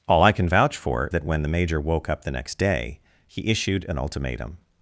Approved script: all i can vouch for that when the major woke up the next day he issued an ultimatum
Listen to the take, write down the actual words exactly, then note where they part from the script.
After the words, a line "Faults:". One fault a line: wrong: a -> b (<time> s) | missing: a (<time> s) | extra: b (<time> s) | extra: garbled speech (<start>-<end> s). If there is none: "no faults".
all i can vouch for that when the major woke up the next day he issued an ultimatum
Faults:
no faults